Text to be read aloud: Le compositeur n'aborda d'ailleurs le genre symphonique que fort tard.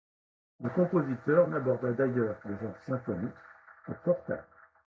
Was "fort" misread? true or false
false